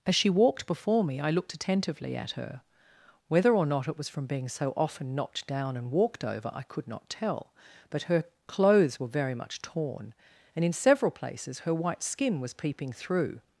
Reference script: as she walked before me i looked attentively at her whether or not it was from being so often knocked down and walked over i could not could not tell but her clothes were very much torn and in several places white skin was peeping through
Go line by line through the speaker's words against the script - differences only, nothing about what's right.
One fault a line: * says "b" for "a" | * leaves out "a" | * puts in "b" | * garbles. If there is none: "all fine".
* leaves out "could not"
* puts in "her"